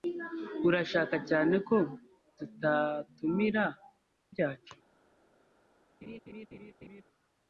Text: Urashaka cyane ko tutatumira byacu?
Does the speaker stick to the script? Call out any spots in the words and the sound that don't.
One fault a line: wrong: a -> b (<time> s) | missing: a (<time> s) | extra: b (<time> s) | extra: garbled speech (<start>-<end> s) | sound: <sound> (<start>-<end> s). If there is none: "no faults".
sound: laugh (6.0-7.0 s)